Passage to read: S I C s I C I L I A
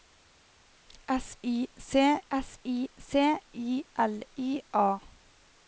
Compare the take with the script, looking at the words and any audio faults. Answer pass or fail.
pass